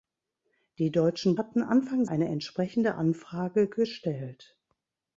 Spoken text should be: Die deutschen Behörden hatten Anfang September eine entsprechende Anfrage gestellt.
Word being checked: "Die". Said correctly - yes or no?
yes